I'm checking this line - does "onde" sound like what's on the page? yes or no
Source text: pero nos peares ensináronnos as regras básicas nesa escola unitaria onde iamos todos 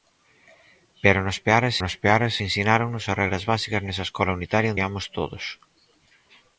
no